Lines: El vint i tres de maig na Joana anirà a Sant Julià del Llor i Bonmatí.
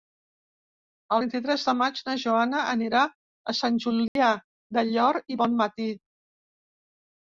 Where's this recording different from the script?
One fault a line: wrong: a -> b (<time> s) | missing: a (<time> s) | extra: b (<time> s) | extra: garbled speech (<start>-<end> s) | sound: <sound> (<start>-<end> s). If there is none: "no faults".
sound: dropout (4.1-4.2 s)